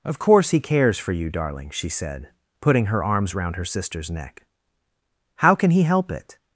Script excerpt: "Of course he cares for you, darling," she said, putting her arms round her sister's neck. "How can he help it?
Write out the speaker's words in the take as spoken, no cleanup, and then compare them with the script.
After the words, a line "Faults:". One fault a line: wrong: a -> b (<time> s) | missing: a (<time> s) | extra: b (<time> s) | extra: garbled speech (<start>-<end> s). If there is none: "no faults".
"Of course he cares for you, darling," she said, putting her arms round her sister's neck. "How can he help it?
Faults:
no faults